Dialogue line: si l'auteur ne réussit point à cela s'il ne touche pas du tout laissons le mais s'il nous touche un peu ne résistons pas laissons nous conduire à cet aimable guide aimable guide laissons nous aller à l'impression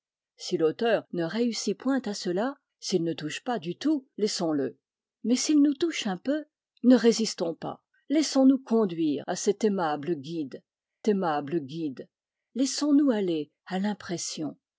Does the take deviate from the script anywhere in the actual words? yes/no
no